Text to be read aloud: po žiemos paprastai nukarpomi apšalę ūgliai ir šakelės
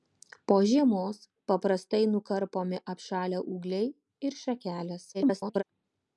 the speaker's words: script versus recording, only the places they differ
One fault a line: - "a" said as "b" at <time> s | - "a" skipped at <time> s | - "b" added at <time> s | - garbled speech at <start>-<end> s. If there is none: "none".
- garbled speech at 5.1-5.6 s